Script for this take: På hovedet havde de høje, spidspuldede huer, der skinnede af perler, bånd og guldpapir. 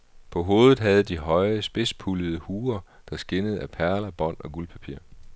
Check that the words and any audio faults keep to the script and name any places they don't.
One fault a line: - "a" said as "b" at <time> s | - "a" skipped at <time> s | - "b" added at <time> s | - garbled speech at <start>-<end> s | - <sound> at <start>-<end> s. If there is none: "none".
none